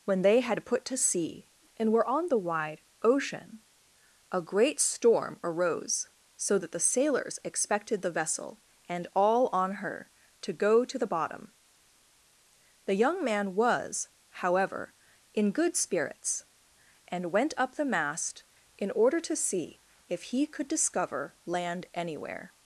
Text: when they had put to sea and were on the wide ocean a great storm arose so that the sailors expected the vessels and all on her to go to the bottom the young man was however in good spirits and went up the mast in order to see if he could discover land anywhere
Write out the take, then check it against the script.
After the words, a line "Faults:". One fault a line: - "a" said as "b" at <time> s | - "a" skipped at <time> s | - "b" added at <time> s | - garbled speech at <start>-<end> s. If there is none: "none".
when they had put to sea and were on the wide ocean a great storm arose so that the sailors expected the vessel and all on her to go to the bottom the young man was however in good spirits and went up the mast in order to see if he could discover land anywhere
Faults:
- "vessels" said as "vessel" at 8.1 s